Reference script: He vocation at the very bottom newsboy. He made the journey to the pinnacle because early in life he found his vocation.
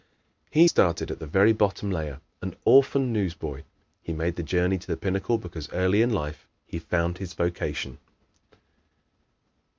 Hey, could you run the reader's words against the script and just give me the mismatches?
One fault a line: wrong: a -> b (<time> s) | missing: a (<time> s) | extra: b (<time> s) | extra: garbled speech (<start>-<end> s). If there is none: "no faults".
wrong: vocation -> started (0.6 s)
extra: layer an orphan (1.9 s)